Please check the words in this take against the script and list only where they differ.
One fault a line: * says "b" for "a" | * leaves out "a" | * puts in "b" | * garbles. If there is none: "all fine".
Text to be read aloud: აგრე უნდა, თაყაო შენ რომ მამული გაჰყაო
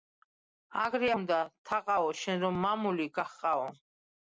all fine